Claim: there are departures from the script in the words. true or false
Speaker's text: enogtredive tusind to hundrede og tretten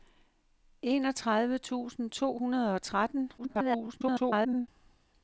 true